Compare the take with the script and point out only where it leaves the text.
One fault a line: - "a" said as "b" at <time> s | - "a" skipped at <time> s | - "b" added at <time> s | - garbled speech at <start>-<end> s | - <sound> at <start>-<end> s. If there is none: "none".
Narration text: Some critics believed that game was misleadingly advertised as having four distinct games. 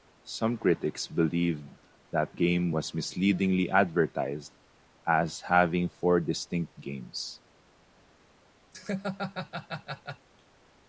- laugh at 8.7-10.3 s